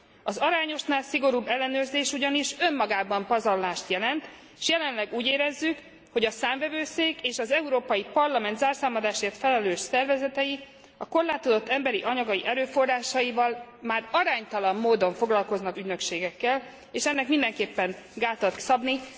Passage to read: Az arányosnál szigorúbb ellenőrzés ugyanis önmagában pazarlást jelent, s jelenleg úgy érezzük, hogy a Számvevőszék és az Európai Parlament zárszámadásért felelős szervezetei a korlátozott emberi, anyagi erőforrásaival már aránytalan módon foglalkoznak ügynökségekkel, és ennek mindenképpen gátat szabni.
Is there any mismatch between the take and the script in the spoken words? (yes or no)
no